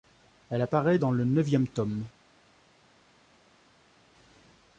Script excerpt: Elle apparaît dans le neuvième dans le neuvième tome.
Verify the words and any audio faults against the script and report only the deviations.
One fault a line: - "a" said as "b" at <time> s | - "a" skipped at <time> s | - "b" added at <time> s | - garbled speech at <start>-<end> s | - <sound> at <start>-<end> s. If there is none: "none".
- "dans le neuvième" skipped at 1.7 s